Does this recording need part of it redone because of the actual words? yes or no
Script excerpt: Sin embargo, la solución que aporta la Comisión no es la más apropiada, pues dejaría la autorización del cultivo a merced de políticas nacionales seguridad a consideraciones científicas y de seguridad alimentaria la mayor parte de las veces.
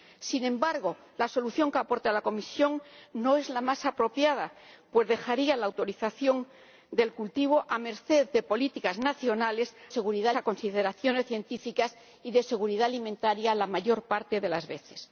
no